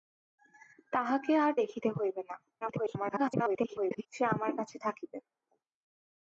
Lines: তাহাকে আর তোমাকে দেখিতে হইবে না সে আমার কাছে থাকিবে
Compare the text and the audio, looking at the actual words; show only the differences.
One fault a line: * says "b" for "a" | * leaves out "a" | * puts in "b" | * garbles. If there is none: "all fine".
* leaves out "তোমাকে"
* garbles